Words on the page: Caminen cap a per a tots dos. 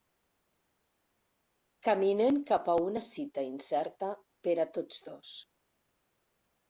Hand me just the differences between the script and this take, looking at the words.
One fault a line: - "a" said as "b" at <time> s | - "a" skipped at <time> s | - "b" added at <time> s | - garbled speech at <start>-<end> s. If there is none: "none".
- "una cita incerta" added at 2.9 s